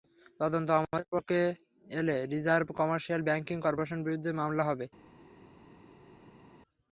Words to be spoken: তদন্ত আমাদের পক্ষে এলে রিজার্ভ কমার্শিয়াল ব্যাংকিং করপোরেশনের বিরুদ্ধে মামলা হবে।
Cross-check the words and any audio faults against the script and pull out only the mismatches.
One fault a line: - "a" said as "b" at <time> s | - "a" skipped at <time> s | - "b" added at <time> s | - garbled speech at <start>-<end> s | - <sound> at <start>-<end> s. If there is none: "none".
none